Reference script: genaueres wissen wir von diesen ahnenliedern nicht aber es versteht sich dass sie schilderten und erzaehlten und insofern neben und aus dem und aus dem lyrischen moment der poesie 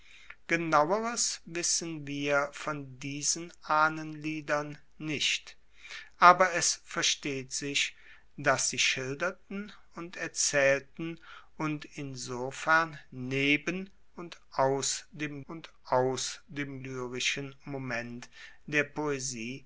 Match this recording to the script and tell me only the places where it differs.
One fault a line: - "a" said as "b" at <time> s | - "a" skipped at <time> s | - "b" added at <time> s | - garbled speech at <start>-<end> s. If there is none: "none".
none